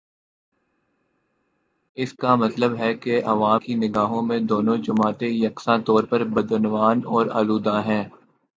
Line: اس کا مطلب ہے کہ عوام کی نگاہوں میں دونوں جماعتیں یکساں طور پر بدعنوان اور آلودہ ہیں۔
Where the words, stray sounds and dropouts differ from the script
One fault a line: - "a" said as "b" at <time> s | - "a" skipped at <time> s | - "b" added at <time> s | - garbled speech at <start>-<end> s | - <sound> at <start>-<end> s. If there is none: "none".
none